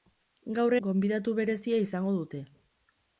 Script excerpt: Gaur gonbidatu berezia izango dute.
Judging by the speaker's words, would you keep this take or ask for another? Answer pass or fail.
pass